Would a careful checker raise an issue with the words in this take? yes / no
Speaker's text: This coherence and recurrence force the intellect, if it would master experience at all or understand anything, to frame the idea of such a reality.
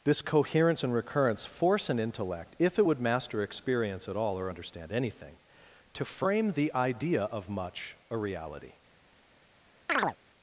yes